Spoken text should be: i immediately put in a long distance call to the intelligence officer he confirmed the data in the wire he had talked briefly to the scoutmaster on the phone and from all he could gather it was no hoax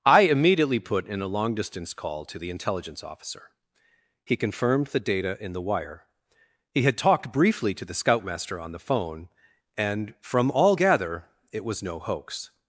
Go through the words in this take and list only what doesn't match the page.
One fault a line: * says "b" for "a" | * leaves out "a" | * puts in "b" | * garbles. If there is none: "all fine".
* leaves out "he could"